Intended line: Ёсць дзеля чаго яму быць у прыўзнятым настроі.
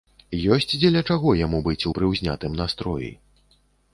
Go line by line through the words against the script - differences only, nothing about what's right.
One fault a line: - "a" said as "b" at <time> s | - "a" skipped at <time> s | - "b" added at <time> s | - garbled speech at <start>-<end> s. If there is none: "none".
none